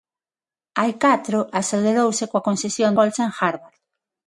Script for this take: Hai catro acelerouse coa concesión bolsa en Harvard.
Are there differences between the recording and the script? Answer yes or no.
no